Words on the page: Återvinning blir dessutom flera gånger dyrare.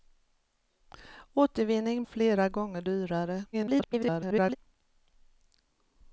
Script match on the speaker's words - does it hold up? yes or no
no